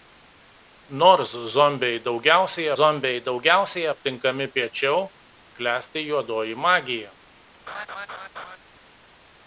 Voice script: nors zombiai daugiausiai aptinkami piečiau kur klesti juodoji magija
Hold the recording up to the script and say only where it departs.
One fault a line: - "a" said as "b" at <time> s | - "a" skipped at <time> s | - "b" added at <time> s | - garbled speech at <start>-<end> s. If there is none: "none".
- "zombiai daugiausiai" added at 2.8 s
- "kur" skipped at 5.0 s